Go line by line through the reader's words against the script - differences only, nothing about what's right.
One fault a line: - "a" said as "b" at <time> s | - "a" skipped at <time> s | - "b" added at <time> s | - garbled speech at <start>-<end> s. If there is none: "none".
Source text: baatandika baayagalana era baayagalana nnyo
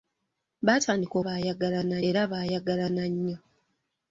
none